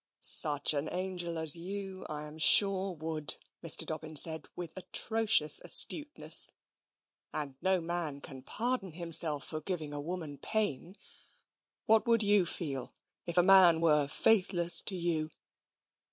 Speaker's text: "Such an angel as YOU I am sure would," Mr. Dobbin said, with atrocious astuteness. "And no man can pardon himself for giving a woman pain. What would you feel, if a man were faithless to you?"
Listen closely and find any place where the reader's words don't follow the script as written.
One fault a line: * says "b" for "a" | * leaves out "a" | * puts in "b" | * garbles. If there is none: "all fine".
all fine